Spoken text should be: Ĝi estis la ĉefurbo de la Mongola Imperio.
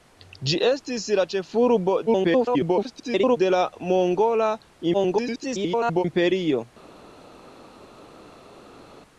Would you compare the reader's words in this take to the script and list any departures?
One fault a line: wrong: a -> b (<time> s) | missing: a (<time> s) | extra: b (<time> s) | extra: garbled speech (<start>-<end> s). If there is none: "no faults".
extra: garbled speech (2.1-3.4 s)
extra: garbled speech (4.9-6.0 s)